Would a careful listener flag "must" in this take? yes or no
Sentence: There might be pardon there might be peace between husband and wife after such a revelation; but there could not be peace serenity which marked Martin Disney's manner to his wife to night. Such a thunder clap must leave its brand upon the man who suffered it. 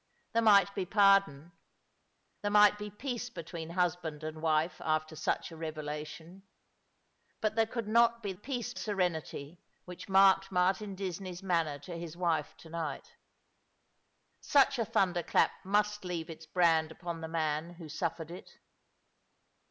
no